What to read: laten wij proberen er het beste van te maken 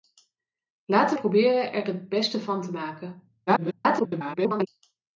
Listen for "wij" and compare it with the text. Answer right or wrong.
wrong